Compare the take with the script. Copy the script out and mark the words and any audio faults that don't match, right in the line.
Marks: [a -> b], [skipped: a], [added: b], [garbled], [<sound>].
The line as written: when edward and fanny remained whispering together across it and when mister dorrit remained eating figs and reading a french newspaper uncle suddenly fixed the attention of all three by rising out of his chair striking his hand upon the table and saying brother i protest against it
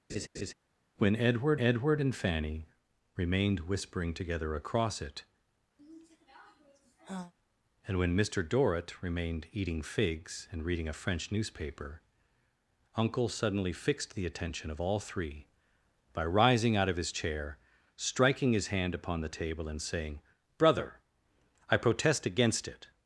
[laugh] when edward [added: edward] and fanny remained whispering together across it [sigh] and when mister dorrit remained eating figs and reading a french newspaper uncle suddenly fixed the attention of all three by rising out of his chair striking his hand upon the table and saying brother i protest against it